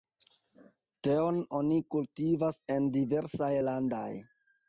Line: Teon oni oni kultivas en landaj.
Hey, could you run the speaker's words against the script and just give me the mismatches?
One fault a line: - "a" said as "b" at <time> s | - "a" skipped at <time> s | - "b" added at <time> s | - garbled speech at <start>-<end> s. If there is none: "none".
- "oni" skipped at 1.8 s
- "diversaj" added at 3.0 s